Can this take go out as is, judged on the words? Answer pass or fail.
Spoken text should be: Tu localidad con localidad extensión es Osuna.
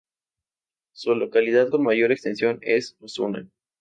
fail